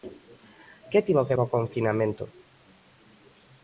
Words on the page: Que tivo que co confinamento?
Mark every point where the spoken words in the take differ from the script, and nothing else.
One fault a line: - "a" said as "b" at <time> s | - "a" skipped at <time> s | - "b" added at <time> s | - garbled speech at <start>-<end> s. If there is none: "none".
none